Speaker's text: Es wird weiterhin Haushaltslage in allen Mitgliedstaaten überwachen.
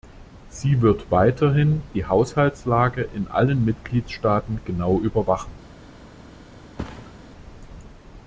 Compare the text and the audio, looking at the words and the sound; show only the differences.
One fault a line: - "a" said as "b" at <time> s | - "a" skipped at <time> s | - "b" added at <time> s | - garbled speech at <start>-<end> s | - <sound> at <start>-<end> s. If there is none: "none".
- "Es" said as "Sie" at 0.5 s
- "die" added at 1.9 s
- "genau" added at 4.7 s
- thud at 6.8-7.2 s